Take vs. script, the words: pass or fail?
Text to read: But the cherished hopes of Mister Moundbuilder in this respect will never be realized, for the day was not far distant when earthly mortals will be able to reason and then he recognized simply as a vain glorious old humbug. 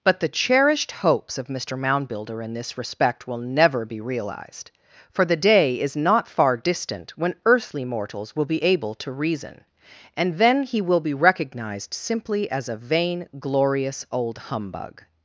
fail